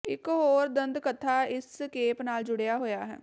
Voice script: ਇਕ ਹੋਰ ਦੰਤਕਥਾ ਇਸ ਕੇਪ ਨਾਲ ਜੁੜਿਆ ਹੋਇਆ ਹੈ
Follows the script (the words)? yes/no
yes